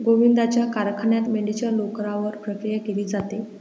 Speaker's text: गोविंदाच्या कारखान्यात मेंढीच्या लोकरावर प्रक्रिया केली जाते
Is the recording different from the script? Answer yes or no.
no